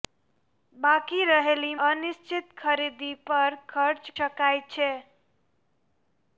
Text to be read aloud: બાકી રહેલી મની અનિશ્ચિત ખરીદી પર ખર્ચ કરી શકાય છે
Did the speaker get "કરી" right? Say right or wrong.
wrong